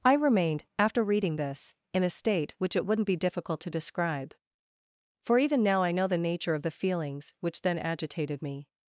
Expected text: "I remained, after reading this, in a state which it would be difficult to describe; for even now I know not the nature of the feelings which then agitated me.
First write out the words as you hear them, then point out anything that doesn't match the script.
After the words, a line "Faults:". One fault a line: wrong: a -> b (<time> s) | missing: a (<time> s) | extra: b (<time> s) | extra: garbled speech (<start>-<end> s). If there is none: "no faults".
"I remained, after reading this, in a state which it wouldn't be difficult to describe; for even now I know the nature of the feelings which then agitated me.
Faults:
wrong: would -> wouldn't (2.9 s)
missing: not (6.1 s)